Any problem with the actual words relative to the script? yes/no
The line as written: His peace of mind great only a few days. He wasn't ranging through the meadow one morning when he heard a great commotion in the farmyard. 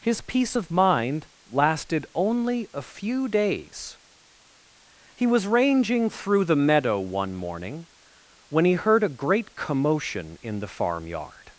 yes